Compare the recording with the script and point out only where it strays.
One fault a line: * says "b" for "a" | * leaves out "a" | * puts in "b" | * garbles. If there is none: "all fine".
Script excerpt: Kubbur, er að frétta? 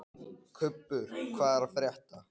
* puts in "hvað"